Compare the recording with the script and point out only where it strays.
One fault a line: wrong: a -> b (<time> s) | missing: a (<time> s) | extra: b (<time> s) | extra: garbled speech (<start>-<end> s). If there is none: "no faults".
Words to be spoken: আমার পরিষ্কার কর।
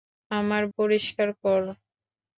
no faults